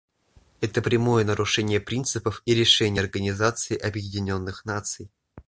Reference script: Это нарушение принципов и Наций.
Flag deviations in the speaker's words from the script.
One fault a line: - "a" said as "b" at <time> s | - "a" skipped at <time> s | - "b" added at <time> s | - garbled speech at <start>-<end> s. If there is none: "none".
- "прямое" added at 0.8 s
- "решений Организации Объединенных" added at 2.5 s